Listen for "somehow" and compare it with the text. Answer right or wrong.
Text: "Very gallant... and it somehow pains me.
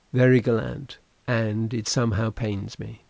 right